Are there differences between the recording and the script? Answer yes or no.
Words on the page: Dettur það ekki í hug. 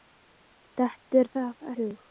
yes